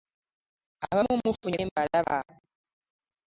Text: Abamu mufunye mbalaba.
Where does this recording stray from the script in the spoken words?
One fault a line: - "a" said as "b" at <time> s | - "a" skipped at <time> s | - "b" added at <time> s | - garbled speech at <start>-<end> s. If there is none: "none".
none